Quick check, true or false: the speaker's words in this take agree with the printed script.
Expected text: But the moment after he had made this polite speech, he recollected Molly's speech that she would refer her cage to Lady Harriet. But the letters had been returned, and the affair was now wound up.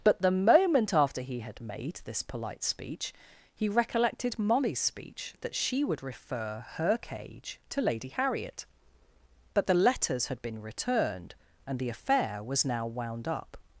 true